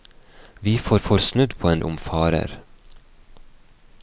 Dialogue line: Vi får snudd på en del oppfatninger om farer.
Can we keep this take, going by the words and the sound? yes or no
no